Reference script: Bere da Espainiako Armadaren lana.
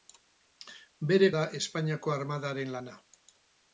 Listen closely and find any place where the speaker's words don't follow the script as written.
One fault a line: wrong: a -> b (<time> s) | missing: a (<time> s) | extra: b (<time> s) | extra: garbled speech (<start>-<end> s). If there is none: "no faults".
no faults